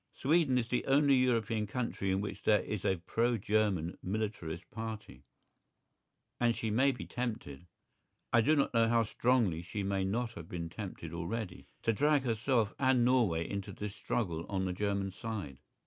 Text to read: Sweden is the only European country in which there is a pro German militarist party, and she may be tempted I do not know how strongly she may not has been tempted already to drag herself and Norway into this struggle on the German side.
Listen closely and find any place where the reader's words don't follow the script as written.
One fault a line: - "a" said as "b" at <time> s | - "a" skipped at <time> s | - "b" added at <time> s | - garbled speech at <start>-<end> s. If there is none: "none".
- "has" said as "have" at 10.3 s